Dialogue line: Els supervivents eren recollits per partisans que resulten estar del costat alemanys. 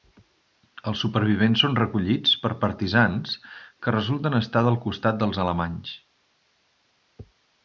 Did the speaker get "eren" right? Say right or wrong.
wrong